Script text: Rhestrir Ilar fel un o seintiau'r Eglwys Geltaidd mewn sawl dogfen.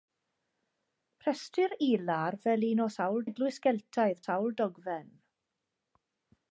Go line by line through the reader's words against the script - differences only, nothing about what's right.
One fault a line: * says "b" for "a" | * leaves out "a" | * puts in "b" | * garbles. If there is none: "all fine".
* says "sawl" for "seintiau'r"
* leaves out "mewn"